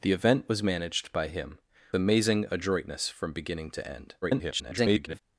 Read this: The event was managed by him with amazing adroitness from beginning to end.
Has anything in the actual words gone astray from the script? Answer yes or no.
yes